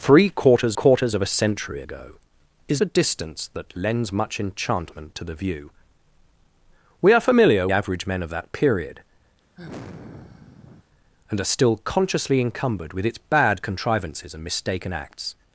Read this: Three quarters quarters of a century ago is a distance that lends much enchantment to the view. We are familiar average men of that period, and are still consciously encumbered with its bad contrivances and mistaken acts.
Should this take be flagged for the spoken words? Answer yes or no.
no